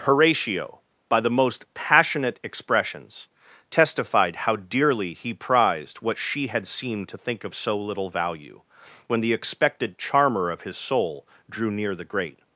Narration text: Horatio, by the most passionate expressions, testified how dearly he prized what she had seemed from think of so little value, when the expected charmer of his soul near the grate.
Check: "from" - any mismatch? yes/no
yes